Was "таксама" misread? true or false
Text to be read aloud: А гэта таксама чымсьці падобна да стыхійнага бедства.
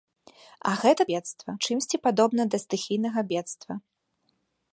true